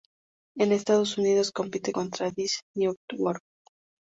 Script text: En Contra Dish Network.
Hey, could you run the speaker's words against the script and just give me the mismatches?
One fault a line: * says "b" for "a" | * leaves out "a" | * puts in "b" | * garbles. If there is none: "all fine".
* puts in "Estados Unidos compite"